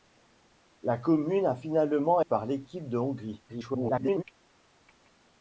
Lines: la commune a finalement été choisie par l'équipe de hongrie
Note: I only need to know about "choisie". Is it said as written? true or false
false